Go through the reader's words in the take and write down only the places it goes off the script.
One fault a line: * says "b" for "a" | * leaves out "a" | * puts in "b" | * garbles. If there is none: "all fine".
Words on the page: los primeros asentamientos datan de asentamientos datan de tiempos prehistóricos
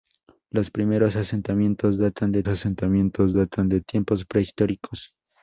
all fine